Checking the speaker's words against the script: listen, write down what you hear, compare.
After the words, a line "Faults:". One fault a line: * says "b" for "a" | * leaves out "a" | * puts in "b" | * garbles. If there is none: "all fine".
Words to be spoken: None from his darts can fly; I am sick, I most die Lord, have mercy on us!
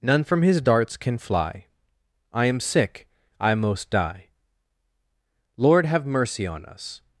None from his darts can fly; I am sick, I most die Lord, have mercy on us!
Faults:
all fine